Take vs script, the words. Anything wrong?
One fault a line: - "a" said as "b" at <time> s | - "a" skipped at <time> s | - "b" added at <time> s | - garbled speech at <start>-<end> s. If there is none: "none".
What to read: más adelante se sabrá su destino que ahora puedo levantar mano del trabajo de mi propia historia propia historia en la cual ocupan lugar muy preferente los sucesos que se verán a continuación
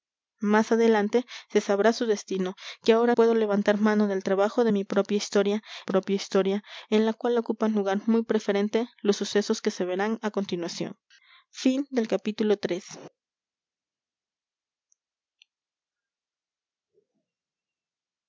none